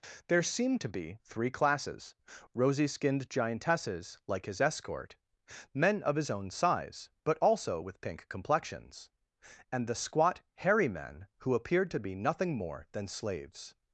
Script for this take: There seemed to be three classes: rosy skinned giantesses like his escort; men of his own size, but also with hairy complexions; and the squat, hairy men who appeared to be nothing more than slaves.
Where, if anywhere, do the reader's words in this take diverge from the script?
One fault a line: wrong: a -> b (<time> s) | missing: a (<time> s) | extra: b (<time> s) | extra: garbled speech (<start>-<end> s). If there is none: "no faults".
wrong: hairy -> pink (8.0 s)